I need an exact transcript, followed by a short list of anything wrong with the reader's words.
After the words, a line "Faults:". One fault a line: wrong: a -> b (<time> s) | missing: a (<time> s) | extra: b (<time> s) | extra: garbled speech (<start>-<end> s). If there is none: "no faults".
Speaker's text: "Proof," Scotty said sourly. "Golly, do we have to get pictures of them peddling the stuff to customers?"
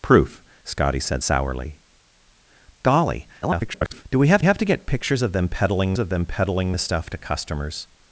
"Proof," Scotty said sourly. "Golly, [garbled] do we have have to get pictures of them peddling of them peddling the stuff to customers?"
Faults:
extra: garbled speech (3.4-4.1 s)
extra: have (4.4 s)
extra: of them peddling (6.0 s)